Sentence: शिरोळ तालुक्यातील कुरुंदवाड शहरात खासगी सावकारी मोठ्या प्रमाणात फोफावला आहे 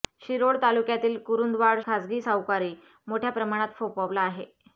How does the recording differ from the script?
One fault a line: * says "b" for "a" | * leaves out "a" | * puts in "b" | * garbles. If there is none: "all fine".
* leaves out "शहरात"